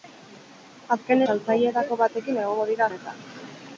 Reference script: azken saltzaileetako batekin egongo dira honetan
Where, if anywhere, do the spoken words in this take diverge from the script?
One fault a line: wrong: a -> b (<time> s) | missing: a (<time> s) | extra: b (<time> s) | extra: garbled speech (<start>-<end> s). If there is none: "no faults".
no faults